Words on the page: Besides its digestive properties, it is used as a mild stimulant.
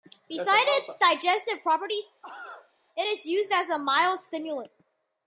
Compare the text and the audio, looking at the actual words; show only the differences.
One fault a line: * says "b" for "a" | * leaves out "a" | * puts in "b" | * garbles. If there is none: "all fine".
all fine